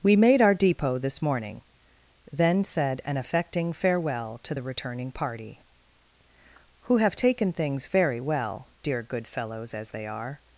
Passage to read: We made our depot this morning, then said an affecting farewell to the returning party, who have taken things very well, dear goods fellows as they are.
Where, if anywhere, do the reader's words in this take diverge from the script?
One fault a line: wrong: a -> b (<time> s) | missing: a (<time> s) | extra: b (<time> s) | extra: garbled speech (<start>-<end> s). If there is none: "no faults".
wrong: goods -> good (9.0 s)